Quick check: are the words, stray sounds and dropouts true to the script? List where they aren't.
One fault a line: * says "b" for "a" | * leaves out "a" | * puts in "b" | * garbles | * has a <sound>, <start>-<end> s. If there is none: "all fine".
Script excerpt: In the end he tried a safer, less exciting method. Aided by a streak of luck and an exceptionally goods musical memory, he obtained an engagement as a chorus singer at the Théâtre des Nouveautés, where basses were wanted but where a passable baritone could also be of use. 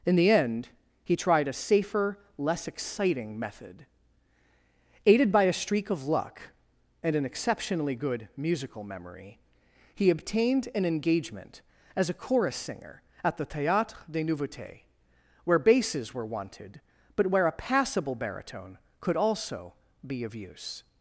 * says "good" for "goods"